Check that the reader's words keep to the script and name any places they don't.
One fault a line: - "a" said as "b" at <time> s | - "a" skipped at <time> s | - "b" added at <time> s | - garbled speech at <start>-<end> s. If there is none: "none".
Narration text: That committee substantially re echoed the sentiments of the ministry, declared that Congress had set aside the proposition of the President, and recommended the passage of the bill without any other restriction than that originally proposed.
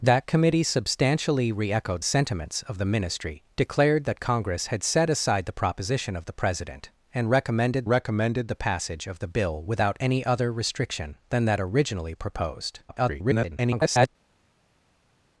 - "the" skipped at 2.0 s
- "recommended" added at 7.9 s
- garbled speech at 12.9-14.1 s